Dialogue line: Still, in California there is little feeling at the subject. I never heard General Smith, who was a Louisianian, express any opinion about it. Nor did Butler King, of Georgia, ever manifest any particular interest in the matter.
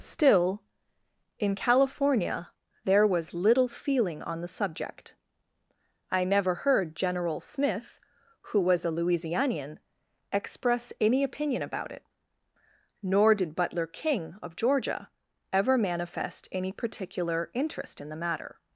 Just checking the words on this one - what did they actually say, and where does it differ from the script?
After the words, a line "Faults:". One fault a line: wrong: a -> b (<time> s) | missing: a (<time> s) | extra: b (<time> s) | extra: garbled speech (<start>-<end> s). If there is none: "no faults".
Still, in California there was little feeling on the subject. I never heard General Smith, who was a Louisianian, express any opinion about it. Nor did Butler King, of Georgia, ever manifest any particular interest in the matter.
Faults:
wrong: is -> was (3.0 s)
wrong: at -> on (4.2 s)